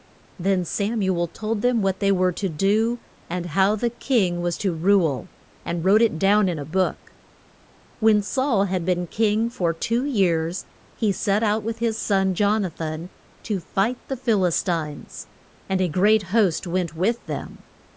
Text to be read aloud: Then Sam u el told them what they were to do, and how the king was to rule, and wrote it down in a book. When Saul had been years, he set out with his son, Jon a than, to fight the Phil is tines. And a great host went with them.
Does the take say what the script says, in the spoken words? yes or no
no